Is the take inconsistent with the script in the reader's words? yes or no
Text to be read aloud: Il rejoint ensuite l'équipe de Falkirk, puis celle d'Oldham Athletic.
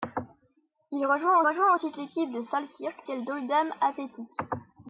yes